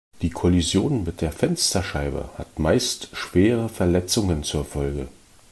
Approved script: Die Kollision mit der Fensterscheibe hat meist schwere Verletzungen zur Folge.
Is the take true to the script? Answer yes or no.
yes